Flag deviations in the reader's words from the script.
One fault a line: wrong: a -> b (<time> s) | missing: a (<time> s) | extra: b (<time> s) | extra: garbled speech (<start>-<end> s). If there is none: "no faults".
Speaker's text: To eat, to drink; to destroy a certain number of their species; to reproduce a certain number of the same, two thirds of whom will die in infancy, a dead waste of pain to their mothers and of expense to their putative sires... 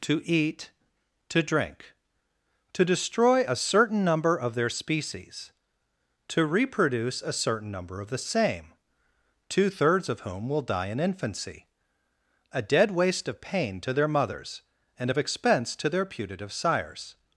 no faults